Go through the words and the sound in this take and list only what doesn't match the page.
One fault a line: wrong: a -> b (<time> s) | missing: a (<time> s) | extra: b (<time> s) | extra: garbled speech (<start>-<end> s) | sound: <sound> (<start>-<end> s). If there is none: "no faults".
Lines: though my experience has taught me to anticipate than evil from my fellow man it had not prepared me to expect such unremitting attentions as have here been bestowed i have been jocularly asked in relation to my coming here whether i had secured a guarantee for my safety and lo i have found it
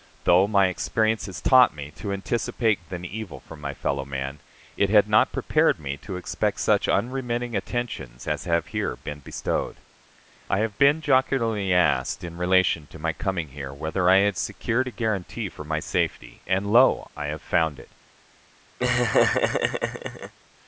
sound: laugh (18.8-20.3 s)